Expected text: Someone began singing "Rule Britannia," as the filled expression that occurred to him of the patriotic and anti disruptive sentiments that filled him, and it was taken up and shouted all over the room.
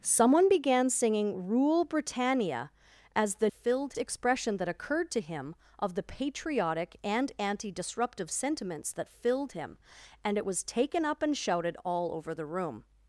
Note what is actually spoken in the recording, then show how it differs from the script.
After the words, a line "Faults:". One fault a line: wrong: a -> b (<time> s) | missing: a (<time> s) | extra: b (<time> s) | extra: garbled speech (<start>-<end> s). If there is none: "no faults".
Someone began singing "Rule Britannia," as the filled expression that occurred to him of the patriotic and anti disruptive sentiments that filled him, and it was taken up and shouted all over the room.
Faults:
no faults